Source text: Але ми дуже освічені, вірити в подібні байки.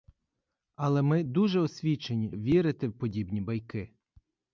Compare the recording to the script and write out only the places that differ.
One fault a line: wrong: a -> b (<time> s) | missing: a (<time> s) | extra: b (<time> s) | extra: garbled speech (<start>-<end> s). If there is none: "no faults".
no faults